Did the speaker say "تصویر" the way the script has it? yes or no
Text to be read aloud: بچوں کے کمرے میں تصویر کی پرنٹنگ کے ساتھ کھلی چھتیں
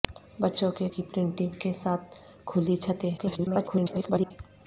no